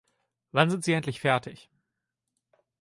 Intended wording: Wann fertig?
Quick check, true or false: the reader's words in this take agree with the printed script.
false